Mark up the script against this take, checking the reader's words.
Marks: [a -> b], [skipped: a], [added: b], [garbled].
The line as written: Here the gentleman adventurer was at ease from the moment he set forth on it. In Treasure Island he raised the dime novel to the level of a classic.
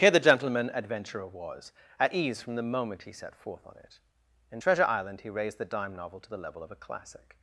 Here the gentleman adventurer was at ease from the moment he set forth on it. In Treasure Island he raised the dime novel to the level of a classic.